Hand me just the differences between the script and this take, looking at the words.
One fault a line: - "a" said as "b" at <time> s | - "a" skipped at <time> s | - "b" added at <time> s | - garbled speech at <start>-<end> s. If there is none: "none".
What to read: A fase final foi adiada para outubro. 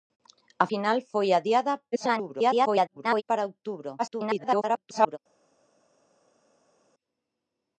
- "fase" skipped at 0.7 s
- garbled speech at 1.9-3.2 s
- garbled speech at 4.0-5.2 s